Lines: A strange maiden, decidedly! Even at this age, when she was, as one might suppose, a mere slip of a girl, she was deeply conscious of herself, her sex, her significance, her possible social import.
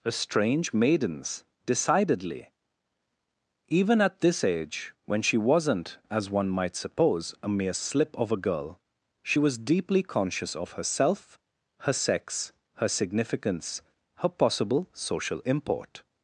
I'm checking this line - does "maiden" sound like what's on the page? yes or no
no